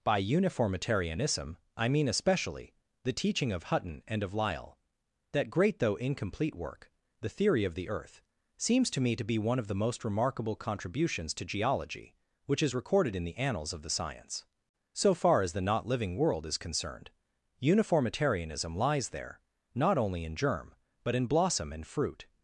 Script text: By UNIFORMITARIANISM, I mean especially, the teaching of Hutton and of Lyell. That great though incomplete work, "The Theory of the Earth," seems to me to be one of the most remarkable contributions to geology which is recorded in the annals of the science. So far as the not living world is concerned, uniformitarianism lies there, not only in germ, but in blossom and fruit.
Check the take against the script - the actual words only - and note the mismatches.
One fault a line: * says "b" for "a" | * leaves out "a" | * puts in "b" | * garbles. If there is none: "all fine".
all fine